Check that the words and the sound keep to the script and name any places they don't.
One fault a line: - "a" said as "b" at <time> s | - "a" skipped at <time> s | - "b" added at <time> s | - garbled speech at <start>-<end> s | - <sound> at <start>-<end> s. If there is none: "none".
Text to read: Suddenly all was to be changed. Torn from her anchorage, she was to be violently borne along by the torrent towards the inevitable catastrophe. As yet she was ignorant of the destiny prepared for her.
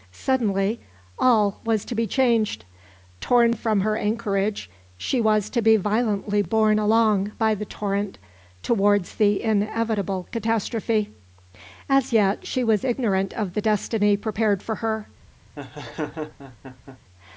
- laugh at 15.6-17.0 s